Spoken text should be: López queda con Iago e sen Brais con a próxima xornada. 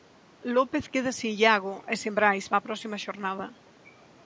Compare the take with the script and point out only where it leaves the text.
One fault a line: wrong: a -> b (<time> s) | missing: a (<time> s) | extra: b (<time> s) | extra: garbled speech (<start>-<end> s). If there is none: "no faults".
wrong: con -> sen (1.2 s)
wrong: con -> para (2.5 s)